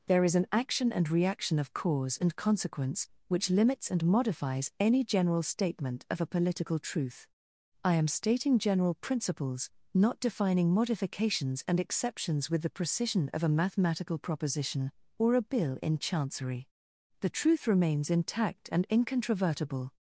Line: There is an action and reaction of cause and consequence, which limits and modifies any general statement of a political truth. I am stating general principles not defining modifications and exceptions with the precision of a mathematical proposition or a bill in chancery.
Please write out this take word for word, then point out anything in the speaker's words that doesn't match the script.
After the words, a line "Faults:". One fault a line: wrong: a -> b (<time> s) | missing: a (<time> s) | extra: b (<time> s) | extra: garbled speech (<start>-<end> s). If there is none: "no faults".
There is an action and reaction of cause and consequence, which limits and modifies any general statement of a political truth. I am stating general principles not defining modifications and exceptions with the precision of a mathematical proposition or a bill in chancery. The truth remains intact and incontrovertible
Faults:
extra: The truth remains intact and incontrovertible (17.2 s)